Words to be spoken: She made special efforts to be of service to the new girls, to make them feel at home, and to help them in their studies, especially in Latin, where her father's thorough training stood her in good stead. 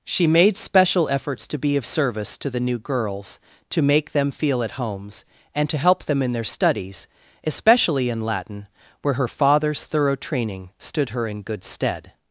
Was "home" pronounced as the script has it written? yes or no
no